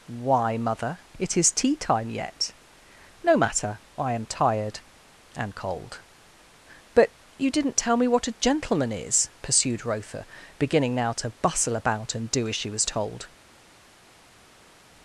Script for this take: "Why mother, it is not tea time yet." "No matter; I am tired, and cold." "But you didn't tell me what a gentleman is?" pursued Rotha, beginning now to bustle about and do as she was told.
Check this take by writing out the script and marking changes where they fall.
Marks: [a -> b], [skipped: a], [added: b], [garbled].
"Why mother, it is [skipped: not] tea time yet." "No matter; I am tired, and cold." "But you didn't tell me what a gentleman is?" pursued Rotha, beginning now to bustle about and do as she was told.